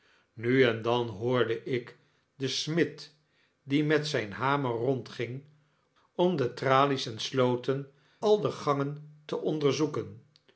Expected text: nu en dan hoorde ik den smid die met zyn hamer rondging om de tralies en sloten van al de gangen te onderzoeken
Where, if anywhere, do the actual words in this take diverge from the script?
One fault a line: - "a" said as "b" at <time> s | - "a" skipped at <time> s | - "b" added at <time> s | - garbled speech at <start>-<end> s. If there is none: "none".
- "van" skipped at 7.9 s